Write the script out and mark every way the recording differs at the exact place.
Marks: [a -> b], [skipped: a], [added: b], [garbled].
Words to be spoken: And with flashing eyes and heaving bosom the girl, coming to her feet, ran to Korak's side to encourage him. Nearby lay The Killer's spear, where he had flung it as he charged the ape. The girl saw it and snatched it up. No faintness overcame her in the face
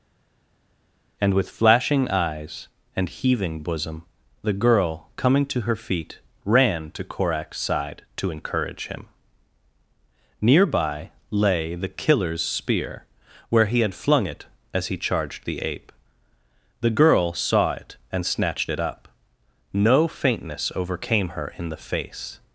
And with flashing eyes and heaving bosom the girl, coming to her feet, ran to Korak's side to encourage him. Nearby lay The Killer's spear, where he had flung it as he charged the ape. The girl saw it and snatched it up. No faintness overcame her in the face